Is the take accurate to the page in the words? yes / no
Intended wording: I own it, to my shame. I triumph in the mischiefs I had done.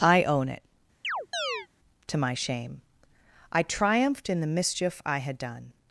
no